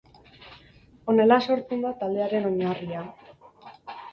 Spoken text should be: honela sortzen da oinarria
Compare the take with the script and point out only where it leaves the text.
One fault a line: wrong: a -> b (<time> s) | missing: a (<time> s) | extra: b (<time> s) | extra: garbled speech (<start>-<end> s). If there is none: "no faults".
extra: taldearen (2.0 s)